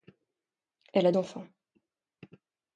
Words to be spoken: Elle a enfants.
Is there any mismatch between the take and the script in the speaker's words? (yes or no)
no